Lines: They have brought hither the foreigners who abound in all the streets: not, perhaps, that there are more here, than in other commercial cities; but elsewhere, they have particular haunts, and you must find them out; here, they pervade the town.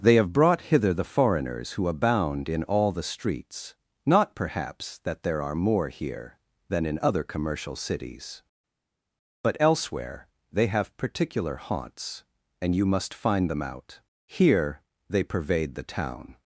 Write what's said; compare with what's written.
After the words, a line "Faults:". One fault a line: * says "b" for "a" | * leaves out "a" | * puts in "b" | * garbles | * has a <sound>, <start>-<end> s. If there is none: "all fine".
They have brought hither the foreigners who abound in all the streets: not, perhaps, that there are more here, than in other commercial cities; but elsewhere, they have particular haunts, and you must find them out; here, they pervade the town.
Faults:
all fine